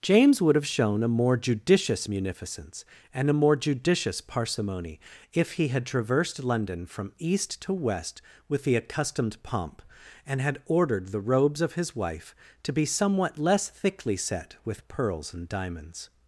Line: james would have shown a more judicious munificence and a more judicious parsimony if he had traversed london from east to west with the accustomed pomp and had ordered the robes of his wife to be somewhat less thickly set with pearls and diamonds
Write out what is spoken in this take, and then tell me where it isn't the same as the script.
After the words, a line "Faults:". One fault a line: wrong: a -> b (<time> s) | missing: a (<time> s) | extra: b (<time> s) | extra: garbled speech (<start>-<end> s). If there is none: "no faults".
james would have shown a more judicious munificence and a more judicious parsimony if he had traversed london from east to west with the accustomed pomp and had ordered the robes of his wife to be somewhat less thickly set with pearls and diamonds
Faults:
no faults